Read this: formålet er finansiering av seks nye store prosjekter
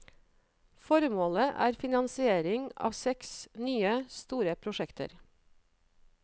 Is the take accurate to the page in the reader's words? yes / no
yes